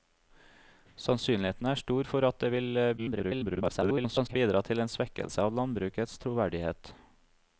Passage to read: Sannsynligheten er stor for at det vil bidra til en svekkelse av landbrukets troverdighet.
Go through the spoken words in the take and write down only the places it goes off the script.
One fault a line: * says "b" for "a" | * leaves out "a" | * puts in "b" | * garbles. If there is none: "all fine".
* garbles